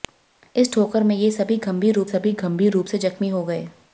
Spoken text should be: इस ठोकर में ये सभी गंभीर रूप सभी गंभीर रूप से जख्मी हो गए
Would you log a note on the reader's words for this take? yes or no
no